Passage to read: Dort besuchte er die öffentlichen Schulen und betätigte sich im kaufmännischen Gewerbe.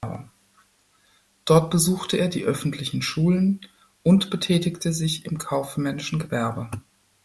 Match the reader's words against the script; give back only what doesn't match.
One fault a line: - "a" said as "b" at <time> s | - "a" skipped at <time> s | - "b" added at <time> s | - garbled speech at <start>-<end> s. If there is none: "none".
none